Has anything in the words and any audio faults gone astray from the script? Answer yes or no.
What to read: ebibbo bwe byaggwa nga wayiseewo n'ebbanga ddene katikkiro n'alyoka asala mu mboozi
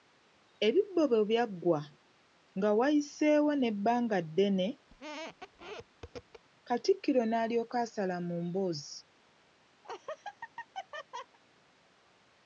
yes